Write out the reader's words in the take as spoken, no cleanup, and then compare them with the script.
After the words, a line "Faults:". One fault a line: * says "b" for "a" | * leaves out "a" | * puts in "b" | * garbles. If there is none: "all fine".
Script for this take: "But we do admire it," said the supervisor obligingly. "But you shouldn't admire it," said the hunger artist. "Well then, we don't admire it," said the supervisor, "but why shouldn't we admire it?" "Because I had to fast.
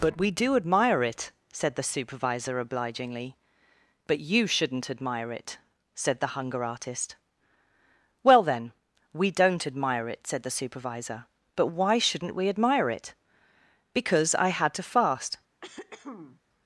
"But we do admire it," said the supervisor obligingly. "But you shouldn't admire it," said the hunger artist. "Well then, we don't admire it," said the supervisor, "but why shouldn't we admire it?" "Because I had to fast.
Faults:
all fine